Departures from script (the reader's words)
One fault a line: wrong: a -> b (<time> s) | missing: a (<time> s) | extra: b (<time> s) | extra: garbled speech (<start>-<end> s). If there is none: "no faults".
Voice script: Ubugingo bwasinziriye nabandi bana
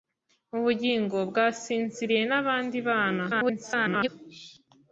extra: garbled speech (3.3-4.1 s)